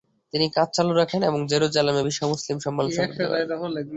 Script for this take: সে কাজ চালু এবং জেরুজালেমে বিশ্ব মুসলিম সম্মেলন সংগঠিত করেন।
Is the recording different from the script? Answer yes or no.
yes